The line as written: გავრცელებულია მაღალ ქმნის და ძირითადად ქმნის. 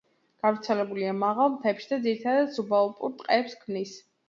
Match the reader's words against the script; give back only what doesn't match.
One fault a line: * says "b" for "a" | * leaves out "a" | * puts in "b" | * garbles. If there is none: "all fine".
* says "მთებში" for "ქმნის"
* puts in "სუბალპურ ტყეებს"